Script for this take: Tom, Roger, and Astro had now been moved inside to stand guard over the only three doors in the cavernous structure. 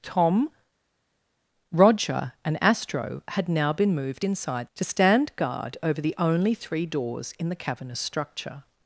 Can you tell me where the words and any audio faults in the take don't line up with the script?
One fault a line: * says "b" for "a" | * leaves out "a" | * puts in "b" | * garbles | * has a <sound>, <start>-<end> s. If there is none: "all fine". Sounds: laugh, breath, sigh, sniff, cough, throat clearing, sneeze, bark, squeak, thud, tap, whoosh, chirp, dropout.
all fine